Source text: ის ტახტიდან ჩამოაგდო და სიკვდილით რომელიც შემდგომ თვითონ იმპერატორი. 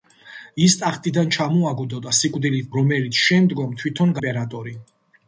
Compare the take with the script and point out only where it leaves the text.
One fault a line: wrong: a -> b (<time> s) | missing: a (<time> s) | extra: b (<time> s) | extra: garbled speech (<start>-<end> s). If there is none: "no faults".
no faults